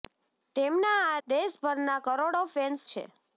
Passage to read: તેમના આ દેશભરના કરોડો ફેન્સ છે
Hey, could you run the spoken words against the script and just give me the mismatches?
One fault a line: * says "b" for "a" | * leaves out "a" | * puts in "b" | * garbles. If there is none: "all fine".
all fine